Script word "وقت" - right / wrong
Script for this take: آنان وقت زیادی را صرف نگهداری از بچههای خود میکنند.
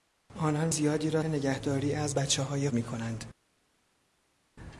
wrong